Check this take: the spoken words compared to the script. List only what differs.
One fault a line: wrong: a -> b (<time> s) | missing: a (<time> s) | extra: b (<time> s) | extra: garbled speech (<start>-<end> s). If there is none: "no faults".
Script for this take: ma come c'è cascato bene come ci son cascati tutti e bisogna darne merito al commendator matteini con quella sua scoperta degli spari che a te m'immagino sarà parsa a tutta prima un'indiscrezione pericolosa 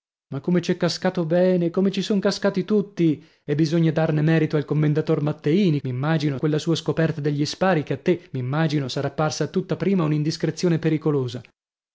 wrong: con -> m'immagino (5.8 s)